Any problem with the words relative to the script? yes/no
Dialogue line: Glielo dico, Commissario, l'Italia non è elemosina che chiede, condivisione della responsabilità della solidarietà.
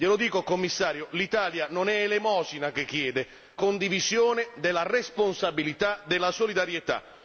no